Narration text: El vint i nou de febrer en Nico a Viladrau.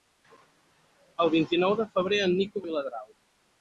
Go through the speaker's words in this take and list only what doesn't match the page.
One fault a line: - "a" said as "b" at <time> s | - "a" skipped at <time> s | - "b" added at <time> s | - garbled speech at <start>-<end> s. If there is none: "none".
none